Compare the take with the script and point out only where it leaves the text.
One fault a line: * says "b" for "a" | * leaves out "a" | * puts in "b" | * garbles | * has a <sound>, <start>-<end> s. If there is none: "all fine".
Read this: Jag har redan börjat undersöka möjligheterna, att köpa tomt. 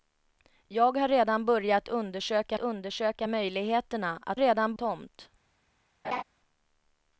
* puts in "undersöka"
* says "redan" for "köpa"
* has a laugh, 6.0-6.2 s